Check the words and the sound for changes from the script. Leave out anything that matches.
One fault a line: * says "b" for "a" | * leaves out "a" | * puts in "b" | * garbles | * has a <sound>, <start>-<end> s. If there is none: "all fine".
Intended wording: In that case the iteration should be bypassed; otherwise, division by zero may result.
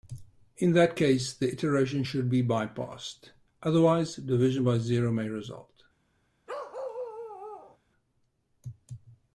* has a bark, 6.5-7.8 s